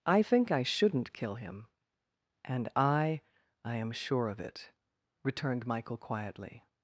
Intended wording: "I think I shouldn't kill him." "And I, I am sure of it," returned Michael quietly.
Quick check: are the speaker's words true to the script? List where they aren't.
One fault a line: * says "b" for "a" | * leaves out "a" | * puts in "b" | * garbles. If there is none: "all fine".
all fine